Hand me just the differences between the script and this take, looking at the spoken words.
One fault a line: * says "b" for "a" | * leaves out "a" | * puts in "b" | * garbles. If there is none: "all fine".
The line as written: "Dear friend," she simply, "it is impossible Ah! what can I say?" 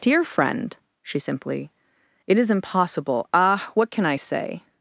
all fine